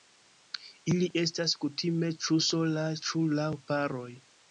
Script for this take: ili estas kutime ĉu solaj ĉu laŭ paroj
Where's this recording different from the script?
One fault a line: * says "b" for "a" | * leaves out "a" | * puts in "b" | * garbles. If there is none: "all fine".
all fine